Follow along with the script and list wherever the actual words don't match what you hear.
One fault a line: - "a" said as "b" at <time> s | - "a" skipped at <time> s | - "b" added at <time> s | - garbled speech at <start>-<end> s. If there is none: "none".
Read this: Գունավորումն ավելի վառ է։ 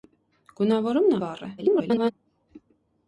- "ավելի" skipped at 1.1 s
- garbled speech at 1.6-2.1 s